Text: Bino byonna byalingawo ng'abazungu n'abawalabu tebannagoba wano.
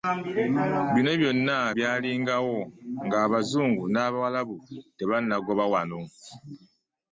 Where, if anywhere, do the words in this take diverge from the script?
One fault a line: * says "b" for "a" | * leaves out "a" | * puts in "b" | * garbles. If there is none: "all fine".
all fine